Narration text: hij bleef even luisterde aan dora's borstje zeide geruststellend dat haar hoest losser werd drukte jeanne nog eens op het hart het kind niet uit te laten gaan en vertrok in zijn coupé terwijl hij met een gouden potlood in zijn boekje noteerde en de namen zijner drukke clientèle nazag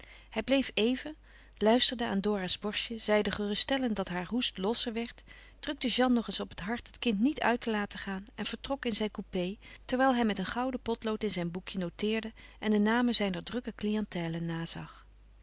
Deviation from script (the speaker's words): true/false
false